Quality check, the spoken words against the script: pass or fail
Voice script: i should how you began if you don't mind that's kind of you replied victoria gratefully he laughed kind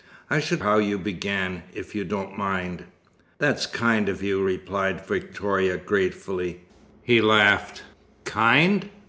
pass